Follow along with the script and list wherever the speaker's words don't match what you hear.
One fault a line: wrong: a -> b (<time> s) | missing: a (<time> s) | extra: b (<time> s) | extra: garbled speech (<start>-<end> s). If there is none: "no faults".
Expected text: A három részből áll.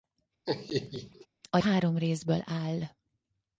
no faults